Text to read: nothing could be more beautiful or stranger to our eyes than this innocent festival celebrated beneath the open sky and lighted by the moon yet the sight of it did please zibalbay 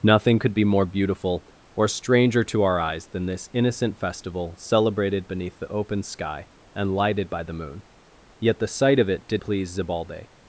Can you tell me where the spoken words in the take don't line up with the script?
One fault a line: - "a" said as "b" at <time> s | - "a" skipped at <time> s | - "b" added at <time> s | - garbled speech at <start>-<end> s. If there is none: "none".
none